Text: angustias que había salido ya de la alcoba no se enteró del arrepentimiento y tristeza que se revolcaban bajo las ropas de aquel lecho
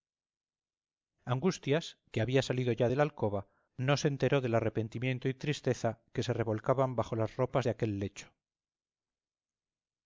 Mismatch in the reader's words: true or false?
false